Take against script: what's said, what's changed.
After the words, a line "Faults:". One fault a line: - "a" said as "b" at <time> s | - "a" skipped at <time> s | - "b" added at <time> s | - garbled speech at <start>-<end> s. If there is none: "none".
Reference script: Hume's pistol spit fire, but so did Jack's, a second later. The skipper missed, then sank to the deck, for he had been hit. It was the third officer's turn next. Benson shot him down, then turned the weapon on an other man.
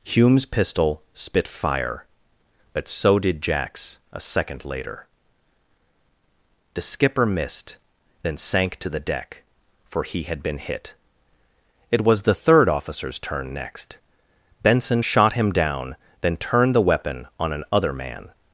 Hume's pistol spit fire, but so did Jack's, a second later. The skipper missed, then sank to the deck, for he had been hit. It was the third officer's turn next. Benson shot him down, then turned the weapon on an other man.
Faults:
none